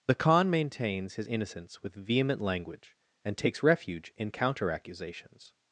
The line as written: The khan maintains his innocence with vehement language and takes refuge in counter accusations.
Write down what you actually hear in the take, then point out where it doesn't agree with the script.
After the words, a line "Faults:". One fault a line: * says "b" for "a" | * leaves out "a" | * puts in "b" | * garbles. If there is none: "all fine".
The khan maintains his innocence with vehement language and takes refuge in counter accusations.
Faults:
all fine